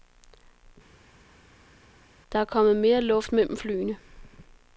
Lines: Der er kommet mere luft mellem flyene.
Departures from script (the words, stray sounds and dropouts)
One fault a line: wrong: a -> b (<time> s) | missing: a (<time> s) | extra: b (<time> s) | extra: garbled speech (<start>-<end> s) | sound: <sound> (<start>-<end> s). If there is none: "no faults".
no faults